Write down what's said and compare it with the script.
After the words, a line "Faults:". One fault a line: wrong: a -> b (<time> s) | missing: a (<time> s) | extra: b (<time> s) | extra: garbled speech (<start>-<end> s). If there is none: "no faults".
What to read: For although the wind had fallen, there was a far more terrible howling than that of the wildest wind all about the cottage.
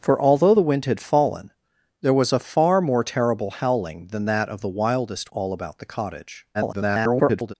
For although the wind had fallen, there was a far more terrible howling than that of the wildest all about the cottage. [garbled]
Faults:
missing: wind (5.3 s)
extra: garbled speech (6.5-7.5 s)